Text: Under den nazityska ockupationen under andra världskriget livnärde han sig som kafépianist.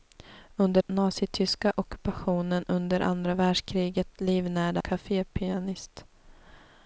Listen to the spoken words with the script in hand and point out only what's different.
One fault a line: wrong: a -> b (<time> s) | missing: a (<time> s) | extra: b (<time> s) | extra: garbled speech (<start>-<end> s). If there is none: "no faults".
missing: den (0.8 s)
missing: han sig som (4.8 s)